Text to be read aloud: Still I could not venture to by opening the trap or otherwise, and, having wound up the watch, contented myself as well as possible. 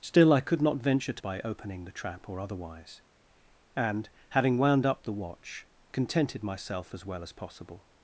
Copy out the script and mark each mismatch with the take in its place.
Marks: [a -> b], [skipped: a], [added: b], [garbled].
Still I could not venture to by opening the trap or otherwise, and, having wound up the watch, contented myself as well as possible.